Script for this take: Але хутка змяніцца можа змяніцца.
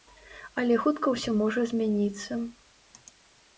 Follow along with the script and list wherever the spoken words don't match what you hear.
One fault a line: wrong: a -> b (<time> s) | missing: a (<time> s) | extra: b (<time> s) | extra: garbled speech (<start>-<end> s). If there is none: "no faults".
wrong: змяніцца -> ўсё (1.2 s)